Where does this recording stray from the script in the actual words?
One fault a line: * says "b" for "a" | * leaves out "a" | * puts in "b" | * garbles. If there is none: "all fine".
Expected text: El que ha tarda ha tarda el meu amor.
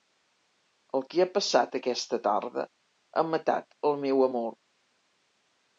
* puts in "passat aquesta"
* says "matat" for "tarda"